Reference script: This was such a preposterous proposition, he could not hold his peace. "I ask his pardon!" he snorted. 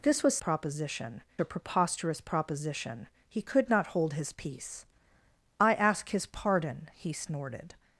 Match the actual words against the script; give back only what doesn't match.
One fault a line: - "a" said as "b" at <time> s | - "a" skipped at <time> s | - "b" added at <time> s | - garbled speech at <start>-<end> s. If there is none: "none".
- "such" said as "proposition" at 0.4 s